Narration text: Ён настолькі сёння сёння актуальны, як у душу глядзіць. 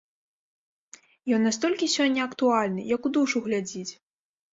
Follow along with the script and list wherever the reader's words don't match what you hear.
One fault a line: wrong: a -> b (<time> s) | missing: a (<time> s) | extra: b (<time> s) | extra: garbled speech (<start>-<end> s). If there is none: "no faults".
missing: сёння (2.2 s)